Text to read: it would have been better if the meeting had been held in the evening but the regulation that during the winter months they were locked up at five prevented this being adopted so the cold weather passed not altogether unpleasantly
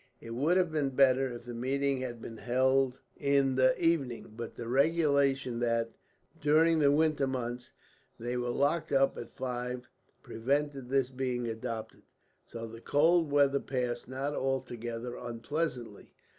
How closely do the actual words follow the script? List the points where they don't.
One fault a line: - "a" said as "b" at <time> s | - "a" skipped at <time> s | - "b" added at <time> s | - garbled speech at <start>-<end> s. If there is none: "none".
none